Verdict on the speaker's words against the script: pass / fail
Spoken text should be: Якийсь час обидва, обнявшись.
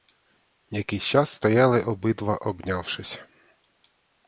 fail